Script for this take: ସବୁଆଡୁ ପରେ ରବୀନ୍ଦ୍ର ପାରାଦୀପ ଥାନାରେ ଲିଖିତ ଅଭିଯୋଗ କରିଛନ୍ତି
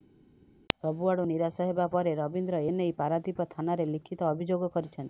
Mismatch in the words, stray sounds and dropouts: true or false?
true